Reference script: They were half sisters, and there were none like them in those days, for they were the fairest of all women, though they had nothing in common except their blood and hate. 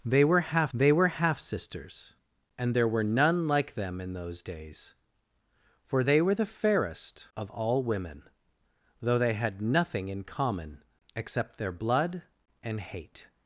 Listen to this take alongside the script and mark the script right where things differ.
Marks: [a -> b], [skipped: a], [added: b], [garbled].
They were half [added: they were half] sisters, and there were none like them in those days, for they were the fairest of all women, though they had nothing in common except their blood and hate.